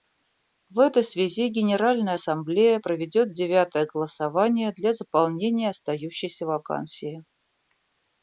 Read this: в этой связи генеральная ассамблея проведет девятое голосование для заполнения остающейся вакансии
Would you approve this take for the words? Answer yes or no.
yes